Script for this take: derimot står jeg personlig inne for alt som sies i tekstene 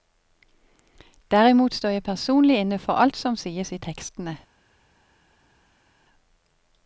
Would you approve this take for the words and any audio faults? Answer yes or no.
yes